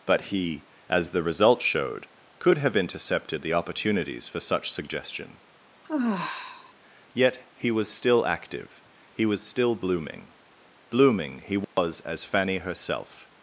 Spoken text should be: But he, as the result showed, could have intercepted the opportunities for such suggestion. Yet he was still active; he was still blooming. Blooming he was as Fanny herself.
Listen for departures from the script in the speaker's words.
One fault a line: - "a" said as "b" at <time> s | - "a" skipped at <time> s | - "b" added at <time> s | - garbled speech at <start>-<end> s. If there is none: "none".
none